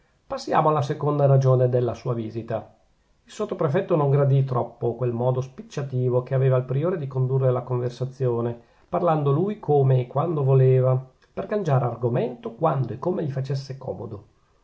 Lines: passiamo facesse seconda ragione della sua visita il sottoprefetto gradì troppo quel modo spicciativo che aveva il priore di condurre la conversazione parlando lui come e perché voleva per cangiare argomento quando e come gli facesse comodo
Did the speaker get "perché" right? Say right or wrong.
wrong